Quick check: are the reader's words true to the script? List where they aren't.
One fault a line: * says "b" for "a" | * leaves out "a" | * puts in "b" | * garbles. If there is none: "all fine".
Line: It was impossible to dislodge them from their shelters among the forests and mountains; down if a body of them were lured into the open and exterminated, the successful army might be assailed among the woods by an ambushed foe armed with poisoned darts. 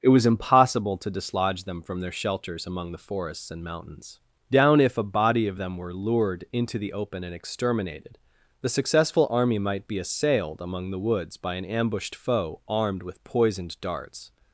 all fine